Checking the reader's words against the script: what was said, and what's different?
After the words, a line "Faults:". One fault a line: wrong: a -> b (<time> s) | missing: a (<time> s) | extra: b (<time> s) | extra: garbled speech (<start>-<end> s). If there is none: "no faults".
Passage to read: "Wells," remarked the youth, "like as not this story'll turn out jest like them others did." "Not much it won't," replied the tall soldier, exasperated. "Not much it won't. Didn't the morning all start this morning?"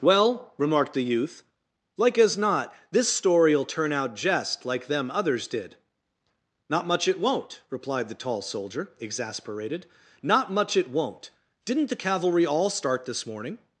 "Well," remarked the youth, "like as not this story'll turn out jest like them others did." "Not much it won't," replied the tall soldier, exasperated. "Not much it won't. Didn't the cavalry all start this morning?"
Faults:
wrong: Wells -> Well (0.0 s)
wrong: morning -> cavalry (12.0 s)